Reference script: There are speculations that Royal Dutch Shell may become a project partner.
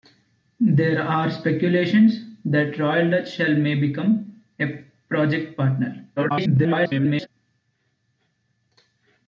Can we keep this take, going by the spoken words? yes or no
no